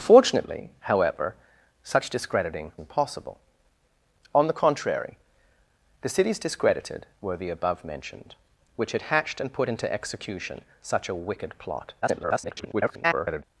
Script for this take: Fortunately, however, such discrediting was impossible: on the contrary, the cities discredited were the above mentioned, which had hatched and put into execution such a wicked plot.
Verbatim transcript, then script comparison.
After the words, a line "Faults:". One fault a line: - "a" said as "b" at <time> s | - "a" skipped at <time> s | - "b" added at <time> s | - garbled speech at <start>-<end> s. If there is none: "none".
Fortunately, however, such discrediting impossible: on the contrary, the cities discredited were the above mentioned, which had hatched and put into execution such a wicked plot. [garbled]
Faults:
- "was" skipped at 2.7 s
- garbled speech at 12.0-13.4 s